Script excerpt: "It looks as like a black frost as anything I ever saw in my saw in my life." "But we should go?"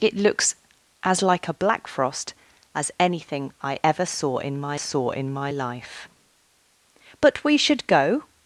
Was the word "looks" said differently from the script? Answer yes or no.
no